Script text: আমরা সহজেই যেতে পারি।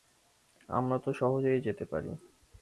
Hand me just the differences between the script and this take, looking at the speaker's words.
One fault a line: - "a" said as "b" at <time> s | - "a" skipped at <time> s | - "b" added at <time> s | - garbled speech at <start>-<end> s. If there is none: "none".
- "তো" added at 1.0 s